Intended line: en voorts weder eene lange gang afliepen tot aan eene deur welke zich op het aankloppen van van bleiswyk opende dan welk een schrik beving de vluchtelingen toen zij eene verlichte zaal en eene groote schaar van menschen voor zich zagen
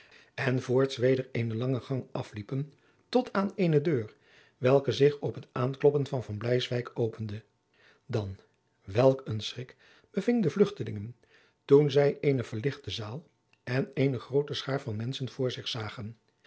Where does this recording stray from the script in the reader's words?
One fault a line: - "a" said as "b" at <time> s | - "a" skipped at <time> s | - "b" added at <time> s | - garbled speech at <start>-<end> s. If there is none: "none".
none